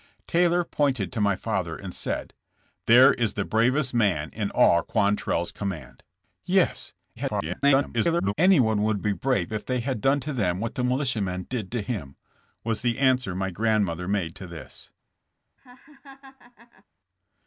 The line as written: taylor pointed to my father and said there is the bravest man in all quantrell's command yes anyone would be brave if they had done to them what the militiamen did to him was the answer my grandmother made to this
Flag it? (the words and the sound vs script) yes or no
yes